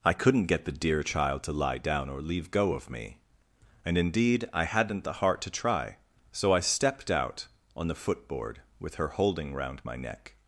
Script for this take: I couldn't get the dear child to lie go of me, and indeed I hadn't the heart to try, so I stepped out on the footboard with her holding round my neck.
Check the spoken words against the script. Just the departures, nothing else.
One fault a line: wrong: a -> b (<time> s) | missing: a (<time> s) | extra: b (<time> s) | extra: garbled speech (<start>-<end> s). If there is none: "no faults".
extra: down or leave (1.8 s)